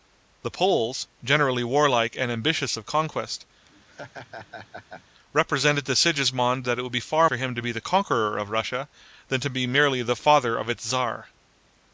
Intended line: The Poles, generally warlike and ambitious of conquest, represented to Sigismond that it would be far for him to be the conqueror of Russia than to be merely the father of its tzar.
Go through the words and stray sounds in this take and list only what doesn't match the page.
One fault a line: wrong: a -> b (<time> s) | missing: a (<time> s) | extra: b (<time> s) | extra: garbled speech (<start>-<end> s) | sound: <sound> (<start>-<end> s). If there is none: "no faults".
sound: laugh (3.6-5.0 s)